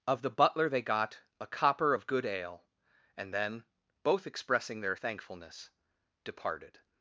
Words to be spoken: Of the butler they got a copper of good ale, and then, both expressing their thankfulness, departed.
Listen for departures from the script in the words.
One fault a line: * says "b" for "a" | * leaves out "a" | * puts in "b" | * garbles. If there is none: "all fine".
all fine